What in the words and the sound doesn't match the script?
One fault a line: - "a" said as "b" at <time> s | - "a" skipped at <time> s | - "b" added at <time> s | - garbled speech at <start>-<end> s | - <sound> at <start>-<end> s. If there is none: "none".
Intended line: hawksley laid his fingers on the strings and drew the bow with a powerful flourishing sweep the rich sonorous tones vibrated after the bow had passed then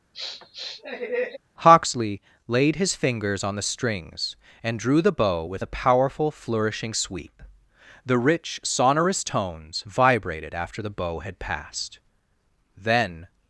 - sniff at 0.1-1.4 s